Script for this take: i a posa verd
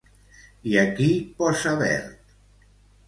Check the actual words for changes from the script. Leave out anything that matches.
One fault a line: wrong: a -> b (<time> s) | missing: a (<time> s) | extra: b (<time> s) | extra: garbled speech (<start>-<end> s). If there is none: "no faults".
extra: qui (1.0 s)